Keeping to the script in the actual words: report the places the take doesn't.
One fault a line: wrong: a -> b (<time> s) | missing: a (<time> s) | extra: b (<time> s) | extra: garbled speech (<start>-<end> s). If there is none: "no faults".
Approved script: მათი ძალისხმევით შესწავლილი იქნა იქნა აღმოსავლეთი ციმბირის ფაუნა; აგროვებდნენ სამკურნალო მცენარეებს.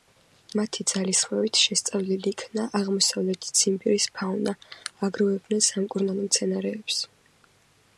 missing: იქნა (2.6 s)